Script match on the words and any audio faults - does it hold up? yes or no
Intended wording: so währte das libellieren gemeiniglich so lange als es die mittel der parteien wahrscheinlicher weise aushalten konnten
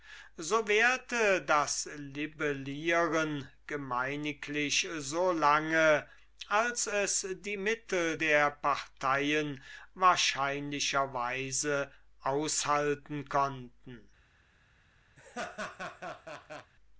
no